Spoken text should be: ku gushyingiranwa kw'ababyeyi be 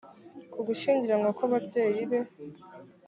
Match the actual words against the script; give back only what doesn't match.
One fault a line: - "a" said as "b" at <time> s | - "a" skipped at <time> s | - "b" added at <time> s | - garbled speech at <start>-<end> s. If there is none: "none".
none